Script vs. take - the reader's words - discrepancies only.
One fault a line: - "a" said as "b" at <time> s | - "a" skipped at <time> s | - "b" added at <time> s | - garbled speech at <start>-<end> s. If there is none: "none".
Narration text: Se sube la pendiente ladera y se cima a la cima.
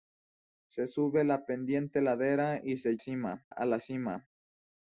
none